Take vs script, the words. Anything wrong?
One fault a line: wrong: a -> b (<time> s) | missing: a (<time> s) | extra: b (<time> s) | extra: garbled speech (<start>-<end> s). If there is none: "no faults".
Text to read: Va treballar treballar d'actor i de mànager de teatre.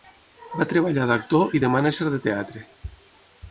missing: treballar (1.1 s)